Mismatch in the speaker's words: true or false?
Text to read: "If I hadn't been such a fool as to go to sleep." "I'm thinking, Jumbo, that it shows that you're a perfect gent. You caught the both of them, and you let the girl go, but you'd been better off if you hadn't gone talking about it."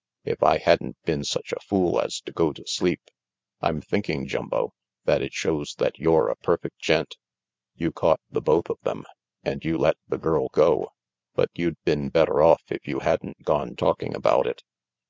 false